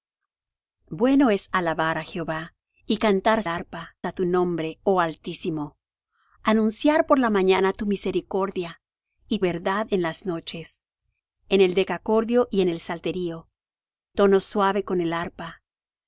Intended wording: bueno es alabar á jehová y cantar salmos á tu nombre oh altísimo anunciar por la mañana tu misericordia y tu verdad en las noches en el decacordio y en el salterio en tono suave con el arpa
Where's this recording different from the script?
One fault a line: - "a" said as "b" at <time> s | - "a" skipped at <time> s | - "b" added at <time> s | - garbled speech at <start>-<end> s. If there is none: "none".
- "salmos" said as "arpa" at 3.5 s
- "tu" skipped at 9.4 s
- "en" skipped at 13.5 s